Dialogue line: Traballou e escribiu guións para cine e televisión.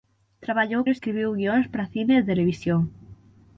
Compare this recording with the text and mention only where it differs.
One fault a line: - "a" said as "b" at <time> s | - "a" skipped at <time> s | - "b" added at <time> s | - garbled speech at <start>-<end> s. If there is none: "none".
none